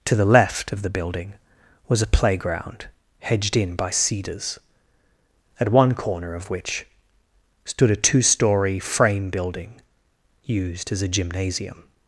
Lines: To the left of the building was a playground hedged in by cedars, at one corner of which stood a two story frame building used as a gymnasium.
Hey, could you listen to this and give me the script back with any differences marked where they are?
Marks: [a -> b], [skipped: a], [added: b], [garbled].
To the left of the building was a playground hedged in by cedars, at one corner of which stood a two story frame building used as a gymnasium.